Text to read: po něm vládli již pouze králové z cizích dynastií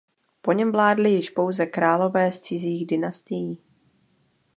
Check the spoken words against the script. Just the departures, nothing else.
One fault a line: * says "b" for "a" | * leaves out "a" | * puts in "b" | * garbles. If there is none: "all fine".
all fine